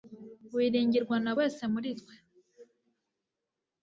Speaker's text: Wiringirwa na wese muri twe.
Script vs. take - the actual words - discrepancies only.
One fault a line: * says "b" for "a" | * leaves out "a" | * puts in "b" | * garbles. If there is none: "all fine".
all fine